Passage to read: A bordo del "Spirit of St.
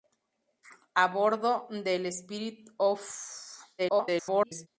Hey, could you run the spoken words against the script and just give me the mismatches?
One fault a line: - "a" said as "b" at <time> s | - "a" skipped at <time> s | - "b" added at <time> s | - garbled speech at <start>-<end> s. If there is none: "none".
- garbled speech at 3.8-4.7 s